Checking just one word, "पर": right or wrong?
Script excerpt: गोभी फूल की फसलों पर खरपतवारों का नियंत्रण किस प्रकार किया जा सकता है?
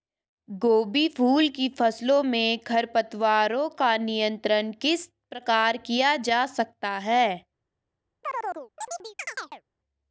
wrong